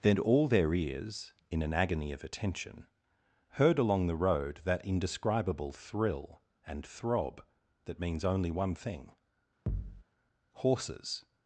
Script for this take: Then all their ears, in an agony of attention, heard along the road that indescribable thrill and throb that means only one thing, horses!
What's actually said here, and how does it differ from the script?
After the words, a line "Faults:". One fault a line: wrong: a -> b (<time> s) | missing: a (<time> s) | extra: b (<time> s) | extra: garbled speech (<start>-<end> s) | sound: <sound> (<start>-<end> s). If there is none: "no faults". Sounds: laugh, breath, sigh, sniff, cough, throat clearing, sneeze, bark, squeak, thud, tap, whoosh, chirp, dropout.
Then all their ears, in an agony of attention, heard along the road that indescribable thrill and throb that means only one thing, horses!
Faults:
sound: thud (9.7-10.0 s)